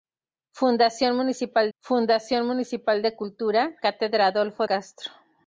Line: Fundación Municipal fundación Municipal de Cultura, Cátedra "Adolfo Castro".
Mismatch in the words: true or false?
false